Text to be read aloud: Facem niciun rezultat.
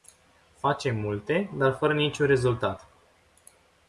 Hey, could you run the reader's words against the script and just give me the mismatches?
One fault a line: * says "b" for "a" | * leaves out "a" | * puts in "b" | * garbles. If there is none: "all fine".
* puts in "multe dar fără"